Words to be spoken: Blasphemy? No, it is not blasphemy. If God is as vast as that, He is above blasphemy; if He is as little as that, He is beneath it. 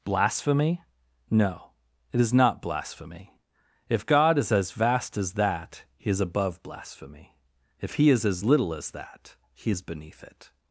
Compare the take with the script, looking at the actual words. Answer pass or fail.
pass